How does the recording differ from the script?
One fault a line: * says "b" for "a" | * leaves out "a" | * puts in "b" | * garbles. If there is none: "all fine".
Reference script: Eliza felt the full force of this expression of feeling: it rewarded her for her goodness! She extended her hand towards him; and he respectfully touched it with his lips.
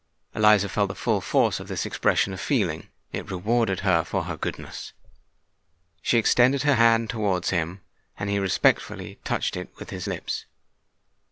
all fine